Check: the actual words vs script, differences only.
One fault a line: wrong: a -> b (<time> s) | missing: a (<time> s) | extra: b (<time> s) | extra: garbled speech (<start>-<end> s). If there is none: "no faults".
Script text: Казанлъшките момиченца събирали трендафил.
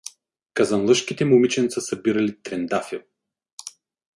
no faults